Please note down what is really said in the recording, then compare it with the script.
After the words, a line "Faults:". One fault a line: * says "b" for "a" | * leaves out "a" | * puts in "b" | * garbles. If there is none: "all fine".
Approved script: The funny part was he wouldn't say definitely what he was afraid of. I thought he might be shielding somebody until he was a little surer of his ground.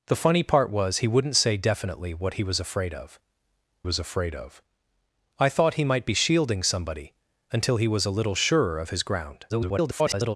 The funny part was he wouldn't say definitely what he was afraid of was afraid of. I thought he might be shielding somebody until he was a little surer of his ground. [garbled]
Faults:
* puts in "was afraid of"
* garbles